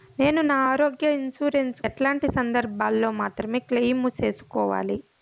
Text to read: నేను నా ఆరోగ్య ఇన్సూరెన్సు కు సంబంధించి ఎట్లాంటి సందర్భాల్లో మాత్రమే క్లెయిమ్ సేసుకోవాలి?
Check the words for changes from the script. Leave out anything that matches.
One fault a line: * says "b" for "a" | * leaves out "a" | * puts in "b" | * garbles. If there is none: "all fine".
* leaves out "కు సంబంధించి"